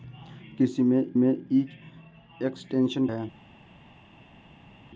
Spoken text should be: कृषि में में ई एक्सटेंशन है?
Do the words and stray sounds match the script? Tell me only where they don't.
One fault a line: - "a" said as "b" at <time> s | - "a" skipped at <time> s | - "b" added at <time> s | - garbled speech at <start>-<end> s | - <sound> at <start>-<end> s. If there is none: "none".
none